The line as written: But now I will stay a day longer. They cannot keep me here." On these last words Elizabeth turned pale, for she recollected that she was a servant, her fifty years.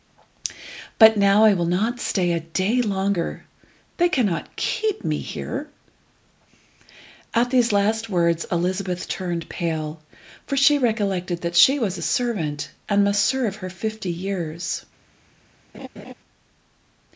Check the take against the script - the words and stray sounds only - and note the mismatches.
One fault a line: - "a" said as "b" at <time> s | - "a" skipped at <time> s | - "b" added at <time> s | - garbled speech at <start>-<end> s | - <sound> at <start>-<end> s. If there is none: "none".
- "not" added at 1.7 s
- "On" said as "At" at 7.3 s
- "and must serve" added at 12.9 s
- laugh at 15.7-16.1 s